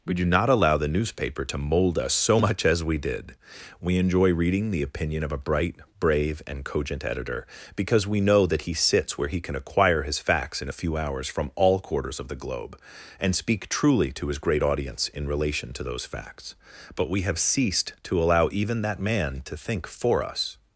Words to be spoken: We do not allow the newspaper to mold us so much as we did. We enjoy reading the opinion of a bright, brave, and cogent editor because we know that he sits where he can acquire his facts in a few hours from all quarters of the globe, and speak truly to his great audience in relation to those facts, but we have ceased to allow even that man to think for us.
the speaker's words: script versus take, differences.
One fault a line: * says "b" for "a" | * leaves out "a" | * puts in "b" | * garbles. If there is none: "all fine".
all fine